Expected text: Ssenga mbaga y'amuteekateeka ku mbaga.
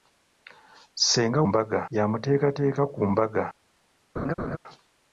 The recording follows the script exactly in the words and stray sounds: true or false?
false